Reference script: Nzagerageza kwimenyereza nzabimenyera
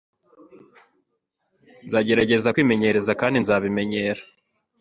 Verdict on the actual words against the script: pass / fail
fail